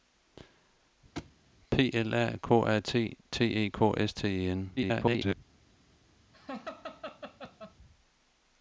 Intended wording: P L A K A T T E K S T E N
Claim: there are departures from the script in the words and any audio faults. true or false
true